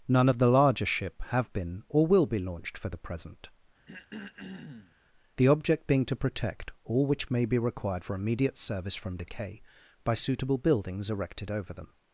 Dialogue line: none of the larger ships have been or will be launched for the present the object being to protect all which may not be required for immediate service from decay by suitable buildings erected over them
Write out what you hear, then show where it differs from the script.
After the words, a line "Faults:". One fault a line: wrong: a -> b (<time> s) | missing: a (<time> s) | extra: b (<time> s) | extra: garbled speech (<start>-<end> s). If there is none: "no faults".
none of the larger ship have been or will be launched for the present the object being to protect all which may be required for immediate service from decay by suitable buildings erected over them
Faults:
wrong: ships -> ship (0.8 s)
missing: not (7.4 s)